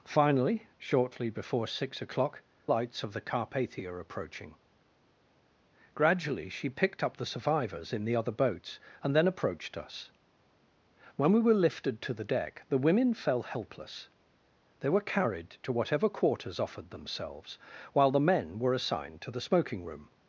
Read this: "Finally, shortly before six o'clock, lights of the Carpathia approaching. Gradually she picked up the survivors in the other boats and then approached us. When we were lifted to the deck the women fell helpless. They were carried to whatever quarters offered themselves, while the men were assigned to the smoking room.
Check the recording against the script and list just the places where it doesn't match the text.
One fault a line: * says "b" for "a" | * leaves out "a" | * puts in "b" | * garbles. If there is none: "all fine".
all fine